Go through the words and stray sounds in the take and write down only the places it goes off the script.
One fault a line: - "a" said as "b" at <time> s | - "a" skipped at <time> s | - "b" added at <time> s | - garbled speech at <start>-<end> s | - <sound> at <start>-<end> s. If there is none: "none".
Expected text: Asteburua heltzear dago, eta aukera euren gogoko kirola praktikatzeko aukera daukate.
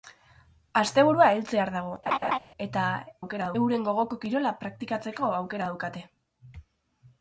- laugh at 2.1-2.4 s